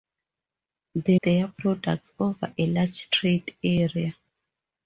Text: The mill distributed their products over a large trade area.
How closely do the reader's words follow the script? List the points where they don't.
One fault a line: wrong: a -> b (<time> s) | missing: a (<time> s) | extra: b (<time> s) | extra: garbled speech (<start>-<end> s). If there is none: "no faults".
missing: mill distributed (1.2 s)